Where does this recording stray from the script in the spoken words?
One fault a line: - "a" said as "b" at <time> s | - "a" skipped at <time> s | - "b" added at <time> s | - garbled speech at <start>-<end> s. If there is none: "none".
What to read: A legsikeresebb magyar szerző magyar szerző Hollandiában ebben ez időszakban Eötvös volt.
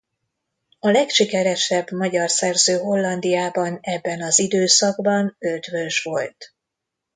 - "magyar szerző" skipped at 2.8 s
- "ez" said as "az" at 4.2 s